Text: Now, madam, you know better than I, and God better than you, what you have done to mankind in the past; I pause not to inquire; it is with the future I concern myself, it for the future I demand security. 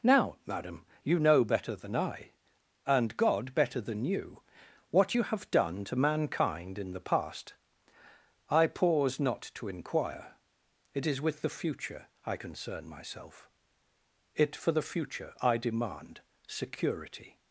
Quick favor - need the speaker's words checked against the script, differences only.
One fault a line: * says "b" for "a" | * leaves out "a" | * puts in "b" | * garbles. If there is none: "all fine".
all fine